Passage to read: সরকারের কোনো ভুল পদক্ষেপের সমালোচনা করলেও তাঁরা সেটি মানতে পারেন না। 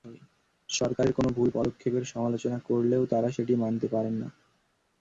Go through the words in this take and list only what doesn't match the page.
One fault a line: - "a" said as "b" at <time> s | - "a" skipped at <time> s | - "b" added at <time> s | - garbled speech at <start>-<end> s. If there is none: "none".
none